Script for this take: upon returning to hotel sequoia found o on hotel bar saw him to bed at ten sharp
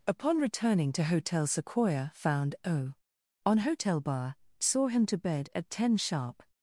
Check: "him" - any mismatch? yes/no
no